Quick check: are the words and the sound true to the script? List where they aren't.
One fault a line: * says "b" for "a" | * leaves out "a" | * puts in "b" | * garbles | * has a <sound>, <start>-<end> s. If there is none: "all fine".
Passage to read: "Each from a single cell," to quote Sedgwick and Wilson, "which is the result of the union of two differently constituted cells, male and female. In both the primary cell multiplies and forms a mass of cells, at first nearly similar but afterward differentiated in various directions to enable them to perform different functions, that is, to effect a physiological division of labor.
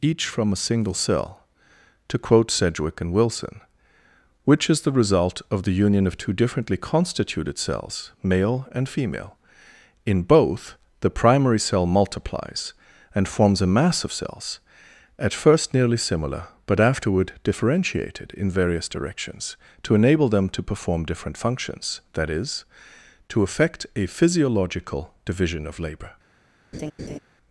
* has a laugh, 26.7-27.2 s